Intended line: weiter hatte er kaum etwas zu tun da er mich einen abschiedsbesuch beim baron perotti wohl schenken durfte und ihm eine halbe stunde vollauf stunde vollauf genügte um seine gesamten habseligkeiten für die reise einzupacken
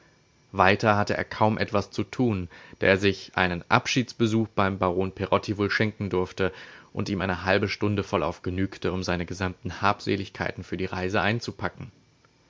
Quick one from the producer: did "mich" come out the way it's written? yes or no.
no